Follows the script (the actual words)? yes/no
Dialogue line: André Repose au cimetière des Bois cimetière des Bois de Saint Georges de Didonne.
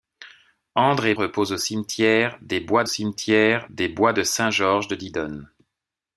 yes